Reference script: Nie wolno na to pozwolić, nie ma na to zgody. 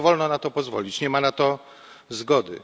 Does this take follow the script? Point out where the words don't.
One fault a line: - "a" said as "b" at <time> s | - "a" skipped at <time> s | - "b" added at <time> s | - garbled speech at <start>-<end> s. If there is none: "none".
none